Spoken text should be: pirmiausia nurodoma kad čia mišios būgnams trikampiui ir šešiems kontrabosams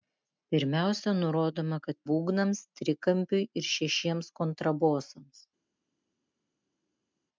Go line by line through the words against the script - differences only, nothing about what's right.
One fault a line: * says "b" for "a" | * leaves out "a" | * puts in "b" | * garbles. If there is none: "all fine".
* leaves out "čia mišios"